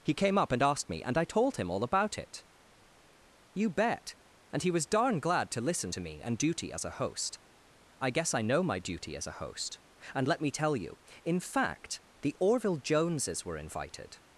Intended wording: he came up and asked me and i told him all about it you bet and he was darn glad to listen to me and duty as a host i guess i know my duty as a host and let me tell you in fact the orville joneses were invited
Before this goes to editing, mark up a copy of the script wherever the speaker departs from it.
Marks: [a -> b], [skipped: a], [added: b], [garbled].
he came up and asked me and i told him all about it you bet and he was darn glad to listen to me and duty as a host i guess i know my duty as a host and let me tell you in fact the orville joneses were invited